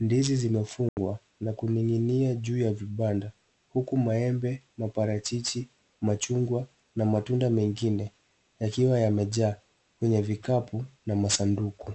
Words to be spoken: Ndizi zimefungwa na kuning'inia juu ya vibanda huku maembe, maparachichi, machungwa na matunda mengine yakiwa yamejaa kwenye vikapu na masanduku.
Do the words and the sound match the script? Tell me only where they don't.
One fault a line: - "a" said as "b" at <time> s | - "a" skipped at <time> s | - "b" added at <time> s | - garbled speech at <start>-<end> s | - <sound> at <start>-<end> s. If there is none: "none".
- dropout at 0.9-1.0 s